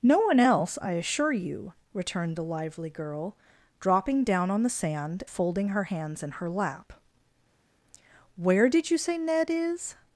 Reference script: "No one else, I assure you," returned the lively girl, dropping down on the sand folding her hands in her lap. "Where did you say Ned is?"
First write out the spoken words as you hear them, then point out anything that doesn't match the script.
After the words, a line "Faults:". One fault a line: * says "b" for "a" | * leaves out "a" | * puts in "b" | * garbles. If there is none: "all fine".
"No one else, I assure you," returned the lively girl, dropping down on the sand folding her hands in her lap. "Where did you say Ned is?"
Faults:
all fine